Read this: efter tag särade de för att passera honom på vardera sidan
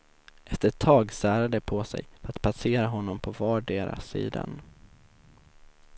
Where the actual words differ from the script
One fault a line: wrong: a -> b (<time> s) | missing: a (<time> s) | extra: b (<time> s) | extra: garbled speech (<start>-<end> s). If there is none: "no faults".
extra: ett (0.7 s)
extra: på sig (1.6 s)